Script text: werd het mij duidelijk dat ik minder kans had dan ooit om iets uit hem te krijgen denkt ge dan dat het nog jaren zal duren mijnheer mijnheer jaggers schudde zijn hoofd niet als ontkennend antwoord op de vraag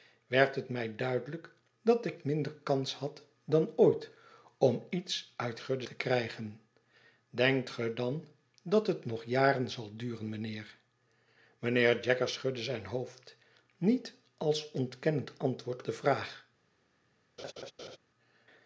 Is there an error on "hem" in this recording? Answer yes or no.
yes